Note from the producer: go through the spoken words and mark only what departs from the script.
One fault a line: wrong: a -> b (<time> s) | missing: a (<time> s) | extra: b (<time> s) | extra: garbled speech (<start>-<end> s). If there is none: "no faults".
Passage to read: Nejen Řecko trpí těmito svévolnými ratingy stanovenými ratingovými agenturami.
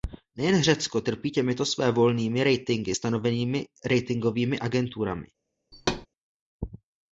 no faults